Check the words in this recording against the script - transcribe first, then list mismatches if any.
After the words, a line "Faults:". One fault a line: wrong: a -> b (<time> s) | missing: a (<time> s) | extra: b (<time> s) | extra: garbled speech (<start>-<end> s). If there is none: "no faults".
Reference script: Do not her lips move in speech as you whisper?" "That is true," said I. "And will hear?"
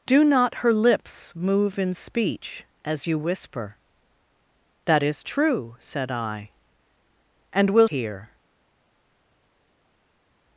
Do not her lips move in speech as you whisper?" "That is true," said I. "And will hear?"
Faults:
no faults